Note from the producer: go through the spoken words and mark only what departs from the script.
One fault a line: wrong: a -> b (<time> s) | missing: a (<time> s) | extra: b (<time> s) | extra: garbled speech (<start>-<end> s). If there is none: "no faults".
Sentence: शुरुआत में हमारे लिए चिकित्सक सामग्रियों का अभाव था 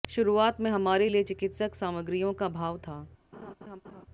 no faults